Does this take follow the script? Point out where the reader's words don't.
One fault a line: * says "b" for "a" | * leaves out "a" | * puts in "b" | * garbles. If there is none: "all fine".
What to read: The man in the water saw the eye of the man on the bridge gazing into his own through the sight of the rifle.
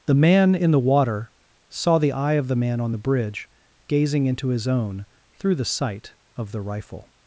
all fine